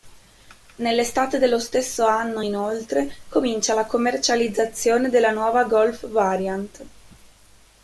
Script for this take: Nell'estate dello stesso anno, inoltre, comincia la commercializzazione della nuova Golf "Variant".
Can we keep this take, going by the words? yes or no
yes